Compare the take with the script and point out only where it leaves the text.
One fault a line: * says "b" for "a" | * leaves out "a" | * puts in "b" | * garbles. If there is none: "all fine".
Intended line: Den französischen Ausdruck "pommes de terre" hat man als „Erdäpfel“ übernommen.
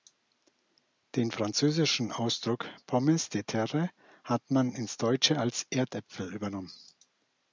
* puts in "ins Deutsche"